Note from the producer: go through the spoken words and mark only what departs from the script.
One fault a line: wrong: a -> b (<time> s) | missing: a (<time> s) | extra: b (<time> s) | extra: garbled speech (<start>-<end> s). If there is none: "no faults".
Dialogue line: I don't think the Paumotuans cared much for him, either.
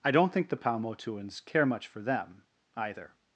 wrong: cared -> care (1.4 s)
wrong: him -> them (2.0 s)